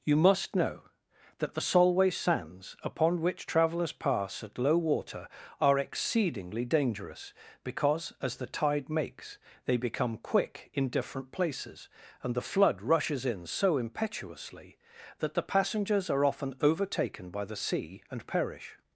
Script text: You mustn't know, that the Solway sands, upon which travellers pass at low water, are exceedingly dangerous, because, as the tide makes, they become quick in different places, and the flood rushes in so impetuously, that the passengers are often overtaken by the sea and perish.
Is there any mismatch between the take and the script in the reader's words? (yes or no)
yes